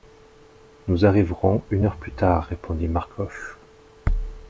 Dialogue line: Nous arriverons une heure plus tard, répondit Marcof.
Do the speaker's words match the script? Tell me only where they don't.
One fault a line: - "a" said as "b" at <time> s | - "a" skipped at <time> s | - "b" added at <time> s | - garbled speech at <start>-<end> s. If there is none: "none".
none